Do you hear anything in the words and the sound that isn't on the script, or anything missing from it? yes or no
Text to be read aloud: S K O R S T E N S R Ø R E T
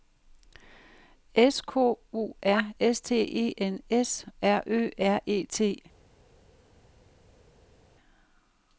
no